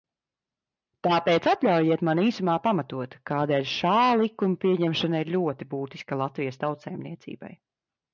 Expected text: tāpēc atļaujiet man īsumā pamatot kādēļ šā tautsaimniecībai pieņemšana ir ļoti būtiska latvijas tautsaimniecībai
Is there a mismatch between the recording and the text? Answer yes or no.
yes